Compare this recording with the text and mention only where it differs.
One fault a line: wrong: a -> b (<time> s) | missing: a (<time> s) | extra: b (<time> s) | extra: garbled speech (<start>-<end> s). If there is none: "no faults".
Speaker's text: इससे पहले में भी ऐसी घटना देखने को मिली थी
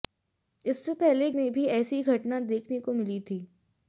no faults